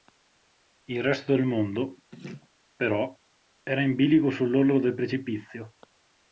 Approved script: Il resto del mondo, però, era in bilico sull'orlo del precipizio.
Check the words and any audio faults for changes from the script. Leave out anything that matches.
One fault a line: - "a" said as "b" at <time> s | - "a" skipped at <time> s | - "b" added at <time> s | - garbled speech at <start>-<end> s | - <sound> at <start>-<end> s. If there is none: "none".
- laugh at 2.1-2.5 s